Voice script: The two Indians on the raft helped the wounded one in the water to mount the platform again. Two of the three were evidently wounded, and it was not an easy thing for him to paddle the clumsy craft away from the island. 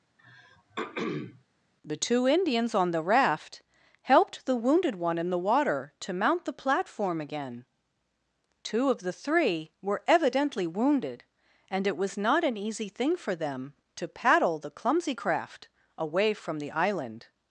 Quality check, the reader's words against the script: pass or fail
fail